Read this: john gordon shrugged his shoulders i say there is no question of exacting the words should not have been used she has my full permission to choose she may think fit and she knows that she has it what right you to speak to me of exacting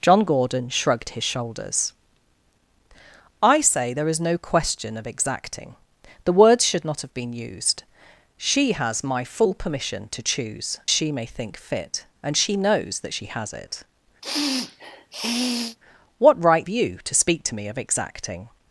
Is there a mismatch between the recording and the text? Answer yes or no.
no